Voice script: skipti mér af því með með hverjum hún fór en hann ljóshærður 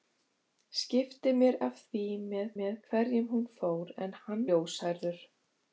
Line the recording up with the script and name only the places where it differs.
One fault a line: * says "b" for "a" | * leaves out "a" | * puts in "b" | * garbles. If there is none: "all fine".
all fine